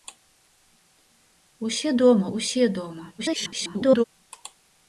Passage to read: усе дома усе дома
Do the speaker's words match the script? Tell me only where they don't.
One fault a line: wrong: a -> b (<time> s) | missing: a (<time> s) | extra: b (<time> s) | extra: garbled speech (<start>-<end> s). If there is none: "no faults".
extra: garbled speech (3.2-4.0 s)